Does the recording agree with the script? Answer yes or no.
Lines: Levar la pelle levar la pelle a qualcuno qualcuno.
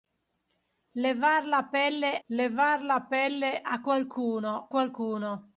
yes